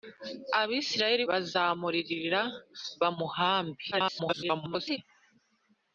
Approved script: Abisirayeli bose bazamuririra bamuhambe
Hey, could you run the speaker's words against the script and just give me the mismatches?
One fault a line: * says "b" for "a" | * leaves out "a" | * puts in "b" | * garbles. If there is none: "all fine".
* leaves out "bose"
* garbles